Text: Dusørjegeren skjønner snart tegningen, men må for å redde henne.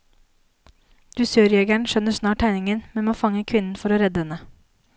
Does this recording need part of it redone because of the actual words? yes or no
yes